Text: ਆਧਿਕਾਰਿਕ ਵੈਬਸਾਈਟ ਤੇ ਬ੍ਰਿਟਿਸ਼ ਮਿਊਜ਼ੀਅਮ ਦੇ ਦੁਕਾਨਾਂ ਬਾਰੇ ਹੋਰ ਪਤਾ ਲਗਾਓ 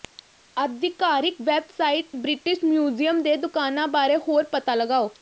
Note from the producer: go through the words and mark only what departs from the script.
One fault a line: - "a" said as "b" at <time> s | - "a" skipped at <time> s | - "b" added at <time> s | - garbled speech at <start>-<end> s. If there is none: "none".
- "ਤੇ" skipped at 2.1 s